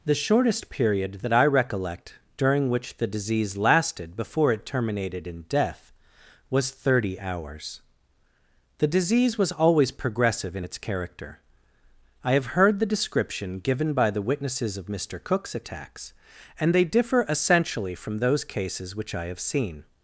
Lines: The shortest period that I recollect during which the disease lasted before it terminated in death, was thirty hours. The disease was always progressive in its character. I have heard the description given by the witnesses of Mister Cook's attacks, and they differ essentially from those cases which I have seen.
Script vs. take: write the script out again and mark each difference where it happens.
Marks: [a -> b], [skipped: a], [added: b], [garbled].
The shortest period that I recollect during which the disease lasted before it terminated in death, was thirty hours. The disease was always progressive in its character. I have heard the description given by the witnesses of Mister Cook's attacks, and they differ essentially from those cases which I have seen.